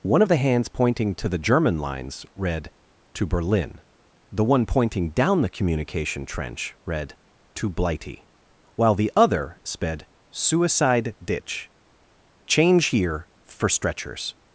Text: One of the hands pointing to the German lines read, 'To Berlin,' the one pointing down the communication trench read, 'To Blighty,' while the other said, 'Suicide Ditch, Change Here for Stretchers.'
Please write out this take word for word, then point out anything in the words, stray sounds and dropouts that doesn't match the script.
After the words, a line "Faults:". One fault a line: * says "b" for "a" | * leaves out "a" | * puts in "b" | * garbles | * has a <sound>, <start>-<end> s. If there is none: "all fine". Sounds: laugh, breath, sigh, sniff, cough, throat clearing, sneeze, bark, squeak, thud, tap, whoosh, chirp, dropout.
One of the hands pointing to the German lines read, 'To Berlin,' the one pointing down the communication trench read, 'To Blighty,' while the other sped, 'Suicide Ditch, Change Here for Stretchers.'
Faults:
* says "sped" for "said"